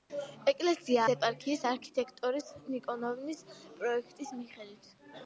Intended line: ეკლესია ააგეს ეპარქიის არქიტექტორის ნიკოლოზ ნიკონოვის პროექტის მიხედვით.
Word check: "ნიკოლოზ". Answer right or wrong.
wrong